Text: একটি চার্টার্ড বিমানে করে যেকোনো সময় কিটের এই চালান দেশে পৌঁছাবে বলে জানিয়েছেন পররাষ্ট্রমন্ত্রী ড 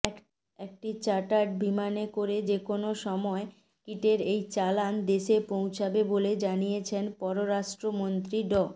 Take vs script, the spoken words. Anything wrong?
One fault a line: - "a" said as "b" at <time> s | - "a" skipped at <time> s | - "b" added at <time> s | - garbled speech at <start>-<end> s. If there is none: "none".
none